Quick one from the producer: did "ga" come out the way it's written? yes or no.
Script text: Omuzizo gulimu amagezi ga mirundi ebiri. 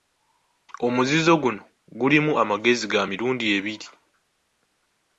yes